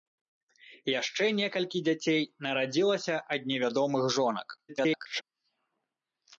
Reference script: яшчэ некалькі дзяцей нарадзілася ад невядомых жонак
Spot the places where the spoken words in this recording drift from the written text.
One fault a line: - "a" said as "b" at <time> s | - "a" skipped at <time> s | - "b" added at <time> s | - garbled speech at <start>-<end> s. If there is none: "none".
- garbled speech at 4.7-5.2 s